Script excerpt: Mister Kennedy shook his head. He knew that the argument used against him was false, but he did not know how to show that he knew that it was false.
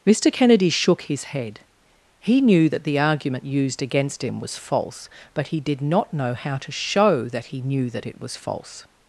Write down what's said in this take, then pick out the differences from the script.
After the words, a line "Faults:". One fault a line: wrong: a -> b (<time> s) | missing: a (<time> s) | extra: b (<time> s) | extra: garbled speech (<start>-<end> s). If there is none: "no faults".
Mister Kennedy shook his head. He knew that the argument used against him was false, but he did not know how to show that he knew that it was false.
Faults:
no faults